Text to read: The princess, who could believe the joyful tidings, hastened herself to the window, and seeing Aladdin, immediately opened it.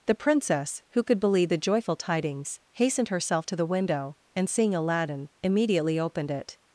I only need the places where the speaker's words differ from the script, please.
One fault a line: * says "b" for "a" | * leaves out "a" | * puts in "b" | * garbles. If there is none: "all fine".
all fine